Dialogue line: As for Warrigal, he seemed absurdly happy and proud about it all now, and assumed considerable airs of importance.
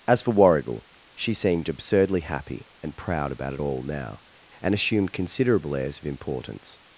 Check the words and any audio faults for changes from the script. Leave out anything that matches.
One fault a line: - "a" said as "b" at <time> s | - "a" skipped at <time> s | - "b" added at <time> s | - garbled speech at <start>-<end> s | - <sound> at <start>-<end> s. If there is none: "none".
- "he" said as "she" at 1.1 s